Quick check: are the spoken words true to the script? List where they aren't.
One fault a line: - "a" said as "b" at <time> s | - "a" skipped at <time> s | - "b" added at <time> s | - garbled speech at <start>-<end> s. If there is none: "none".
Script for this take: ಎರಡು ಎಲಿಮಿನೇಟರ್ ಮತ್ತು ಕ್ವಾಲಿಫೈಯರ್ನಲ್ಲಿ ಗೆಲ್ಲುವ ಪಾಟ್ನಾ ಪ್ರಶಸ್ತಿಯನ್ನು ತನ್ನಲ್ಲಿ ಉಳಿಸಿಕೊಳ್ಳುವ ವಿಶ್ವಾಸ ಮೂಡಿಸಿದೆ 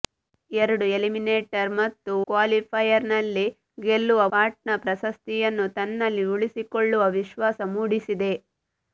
none